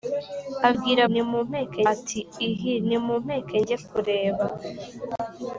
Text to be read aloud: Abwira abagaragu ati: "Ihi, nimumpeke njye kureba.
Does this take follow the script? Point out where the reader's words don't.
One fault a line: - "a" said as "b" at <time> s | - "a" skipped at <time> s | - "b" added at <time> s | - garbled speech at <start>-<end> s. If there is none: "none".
- "abagaragu" said as "nimumpeke" at 1.1 s